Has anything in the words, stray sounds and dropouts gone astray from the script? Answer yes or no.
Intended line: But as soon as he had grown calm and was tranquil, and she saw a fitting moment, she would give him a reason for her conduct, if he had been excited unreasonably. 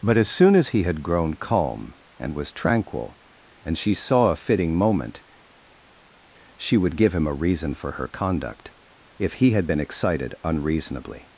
no